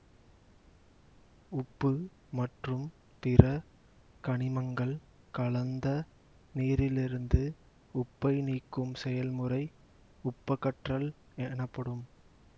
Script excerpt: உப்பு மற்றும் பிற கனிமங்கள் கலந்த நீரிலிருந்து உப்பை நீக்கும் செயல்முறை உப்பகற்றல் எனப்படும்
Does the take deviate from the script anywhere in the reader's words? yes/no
no